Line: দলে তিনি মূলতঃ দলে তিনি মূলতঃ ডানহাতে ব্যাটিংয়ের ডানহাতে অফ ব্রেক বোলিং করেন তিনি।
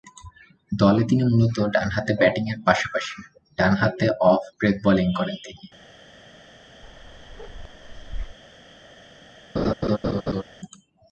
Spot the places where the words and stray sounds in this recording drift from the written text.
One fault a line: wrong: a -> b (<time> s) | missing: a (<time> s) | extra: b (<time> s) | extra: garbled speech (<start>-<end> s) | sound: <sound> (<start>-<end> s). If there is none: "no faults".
missing: দলে তিনি মূলতঃ (1.6 s)
extra: পাশাপাশি (2.7 s)
sound: bark (6.8-8.4 s)
sound: laugh (9.6-10.4 s)